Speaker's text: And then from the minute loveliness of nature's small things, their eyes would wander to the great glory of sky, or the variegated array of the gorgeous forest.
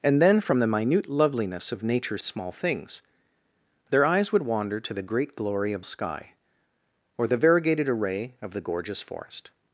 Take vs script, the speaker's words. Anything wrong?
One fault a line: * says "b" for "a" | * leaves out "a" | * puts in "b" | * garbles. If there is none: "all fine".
all fine